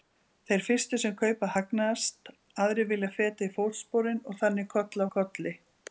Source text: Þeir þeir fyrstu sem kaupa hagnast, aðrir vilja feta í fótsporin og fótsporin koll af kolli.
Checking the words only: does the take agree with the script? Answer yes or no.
no